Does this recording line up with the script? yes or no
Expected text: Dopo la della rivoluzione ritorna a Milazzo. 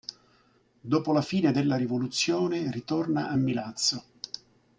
no